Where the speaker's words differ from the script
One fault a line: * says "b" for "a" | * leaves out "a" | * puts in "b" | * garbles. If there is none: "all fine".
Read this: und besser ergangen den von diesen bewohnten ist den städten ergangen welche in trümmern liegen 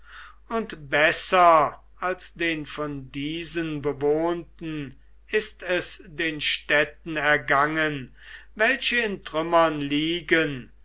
* says "als" for "ergangen"
* puts in "es"